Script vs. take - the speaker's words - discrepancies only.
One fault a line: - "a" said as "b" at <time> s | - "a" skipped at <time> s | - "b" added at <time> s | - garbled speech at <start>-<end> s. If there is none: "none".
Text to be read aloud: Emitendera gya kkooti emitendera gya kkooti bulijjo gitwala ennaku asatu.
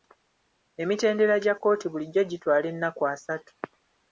- "emitendera gya kkooti" skipped at 1.9 s